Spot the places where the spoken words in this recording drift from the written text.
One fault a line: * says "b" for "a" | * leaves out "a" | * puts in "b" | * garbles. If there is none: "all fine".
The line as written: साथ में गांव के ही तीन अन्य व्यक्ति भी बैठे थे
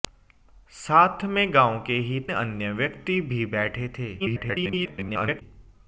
* leaves out "तीन"
* garbles